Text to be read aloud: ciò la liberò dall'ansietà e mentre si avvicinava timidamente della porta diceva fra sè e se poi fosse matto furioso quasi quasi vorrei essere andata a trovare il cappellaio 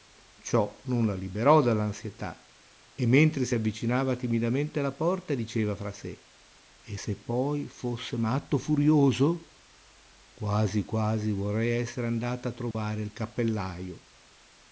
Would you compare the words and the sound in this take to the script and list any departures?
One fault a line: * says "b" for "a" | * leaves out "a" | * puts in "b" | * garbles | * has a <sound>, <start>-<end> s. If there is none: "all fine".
* puts in "non"
* says "alla" for "della"
* has a dropout, 12.7-12.7 s